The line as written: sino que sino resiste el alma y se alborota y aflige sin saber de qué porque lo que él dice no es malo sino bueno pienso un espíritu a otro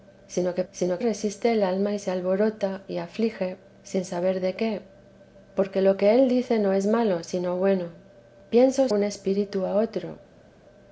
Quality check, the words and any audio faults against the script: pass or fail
pass